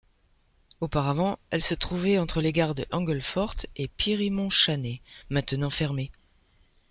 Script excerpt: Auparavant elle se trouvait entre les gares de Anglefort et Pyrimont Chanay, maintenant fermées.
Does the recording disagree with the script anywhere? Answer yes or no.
no